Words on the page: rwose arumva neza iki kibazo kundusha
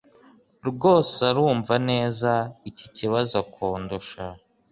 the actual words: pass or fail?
pass